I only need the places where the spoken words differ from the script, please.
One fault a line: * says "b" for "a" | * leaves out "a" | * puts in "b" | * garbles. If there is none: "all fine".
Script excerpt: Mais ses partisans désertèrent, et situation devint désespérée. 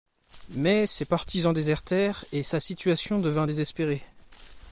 * puts in "sa"